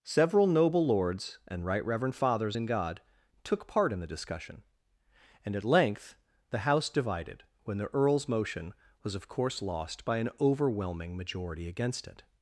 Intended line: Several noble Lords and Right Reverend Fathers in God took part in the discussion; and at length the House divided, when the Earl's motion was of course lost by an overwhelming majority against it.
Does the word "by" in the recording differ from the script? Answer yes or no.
no